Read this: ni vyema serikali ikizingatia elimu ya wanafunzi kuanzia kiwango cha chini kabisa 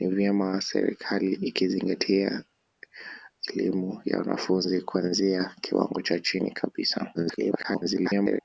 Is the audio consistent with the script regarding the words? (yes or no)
no